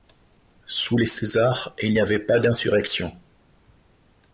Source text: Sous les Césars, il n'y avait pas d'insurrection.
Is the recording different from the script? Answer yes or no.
no